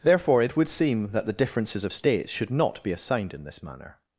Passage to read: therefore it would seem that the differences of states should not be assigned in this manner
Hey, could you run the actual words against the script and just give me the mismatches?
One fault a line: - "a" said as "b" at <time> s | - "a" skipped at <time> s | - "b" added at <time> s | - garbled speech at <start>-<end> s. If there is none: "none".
none